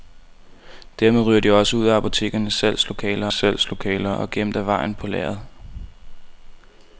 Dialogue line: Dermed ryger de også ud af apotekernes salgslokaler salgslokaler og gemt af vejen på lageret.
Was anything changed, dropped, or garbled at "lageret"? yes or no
no